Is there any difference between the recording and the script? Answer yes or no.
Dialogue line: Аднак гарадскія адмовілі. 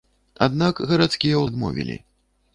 no